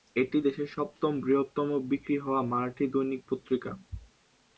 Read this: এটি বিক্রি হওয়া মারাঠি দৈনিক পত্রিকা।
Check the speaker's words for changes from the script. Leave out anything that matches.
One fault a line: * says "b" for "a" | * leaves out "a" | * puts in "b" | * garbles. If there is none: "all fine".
* puts in "দেশের সপ্তম বৃহত্তম"